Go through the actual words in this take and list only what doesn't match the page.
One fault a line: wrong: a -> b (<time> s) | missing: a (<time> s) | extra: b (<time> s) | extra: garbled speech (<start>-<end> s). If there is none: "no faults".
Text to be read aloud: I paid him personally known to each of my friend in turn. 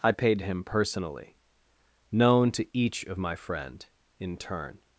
no faults